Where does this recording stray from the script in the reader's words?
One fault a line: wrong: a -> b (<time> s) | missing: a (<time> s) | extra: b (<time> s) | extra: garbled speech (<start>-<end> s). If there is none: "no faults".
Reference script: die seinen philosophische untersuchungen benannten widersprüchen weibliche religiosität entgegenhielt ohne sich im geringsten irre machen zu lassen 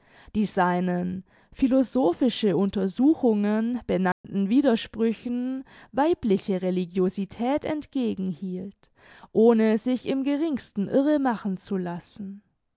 no faults